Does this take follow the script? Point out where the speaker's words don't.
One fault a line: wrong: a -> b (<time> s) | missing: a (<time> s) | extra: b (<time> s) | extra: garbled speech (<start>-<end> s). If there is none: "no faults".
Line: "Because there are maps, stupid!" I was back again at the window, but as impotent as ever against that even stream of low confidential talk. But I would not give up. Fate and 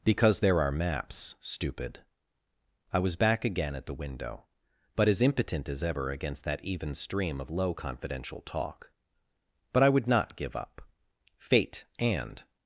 no faults